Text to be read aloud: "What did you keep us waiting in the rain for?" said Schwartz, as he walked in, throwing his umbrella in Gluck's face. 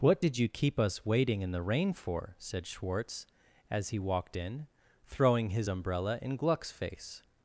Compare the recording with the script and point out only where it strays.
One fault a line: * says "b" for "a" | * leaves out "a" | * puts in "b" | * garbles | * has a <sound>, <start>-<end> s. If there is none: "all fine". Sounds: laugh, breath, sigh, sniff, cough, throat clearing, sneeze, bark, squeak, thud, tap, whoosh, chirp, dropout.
all fine